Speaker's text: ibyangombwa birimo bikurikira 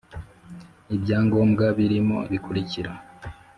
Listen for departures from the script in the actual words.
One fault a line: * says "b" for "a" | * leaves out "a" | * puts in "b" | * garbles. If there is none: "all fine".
all fine